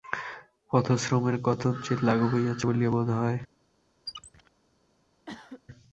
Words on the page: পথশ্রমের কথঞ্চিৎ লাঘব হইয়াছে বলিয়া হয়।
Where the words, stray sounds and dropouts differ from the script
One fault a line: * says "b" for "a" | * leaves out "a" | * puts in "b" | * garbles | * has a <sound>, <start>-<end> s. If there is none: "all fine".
* puts in "বোধ"
* has a squeak, 4.1-4.5 s
* has a cough, 5.3-5.6 s